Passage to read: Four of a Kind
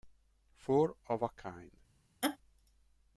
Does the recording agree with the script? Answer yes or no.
yes